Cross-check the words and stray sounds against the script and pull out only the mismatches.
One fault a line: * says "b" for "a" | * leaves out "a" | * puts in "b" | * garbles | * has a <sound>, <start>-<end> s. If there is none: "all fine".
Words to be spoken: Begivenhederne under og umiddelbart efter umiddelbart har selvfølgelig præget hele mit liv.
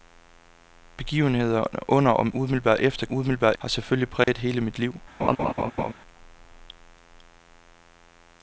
* has a dropout, 4.2-4.3 s
* has a laugh, 5.2-5.9 s